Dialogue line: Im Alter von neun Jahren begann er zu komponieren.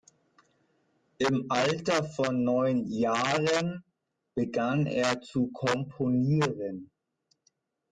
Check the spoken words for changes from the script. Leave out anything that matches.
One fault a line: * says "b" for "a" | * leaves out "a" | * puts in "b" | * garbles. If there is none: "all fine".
all fine